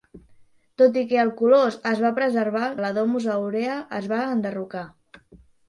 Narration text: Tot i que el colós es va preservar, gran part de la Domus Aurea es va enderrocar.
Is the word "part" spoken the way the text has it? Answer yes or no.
no